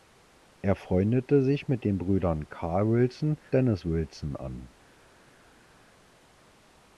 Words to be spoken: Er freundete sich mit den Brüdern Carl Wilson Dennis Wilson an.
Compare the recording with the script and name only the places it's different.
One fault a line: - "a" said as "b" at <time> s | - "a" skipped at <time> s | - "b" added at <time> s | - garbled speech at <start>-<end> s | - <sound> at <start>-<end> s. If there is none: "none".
none